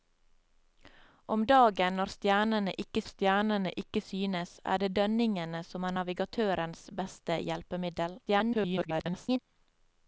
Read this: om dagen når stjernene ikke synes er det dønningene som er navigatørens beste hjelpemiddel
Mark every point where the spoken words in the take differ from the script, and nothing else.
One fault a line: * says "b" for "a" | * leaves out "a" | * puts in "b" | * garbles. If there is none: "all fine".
* puts in "stjernene ikke"
* garbles